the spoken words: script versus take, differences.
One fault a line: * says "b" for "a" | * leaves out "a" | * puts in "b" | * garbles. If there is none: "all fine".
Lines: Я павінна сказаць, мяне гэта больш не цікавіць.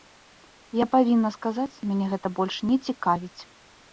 all fine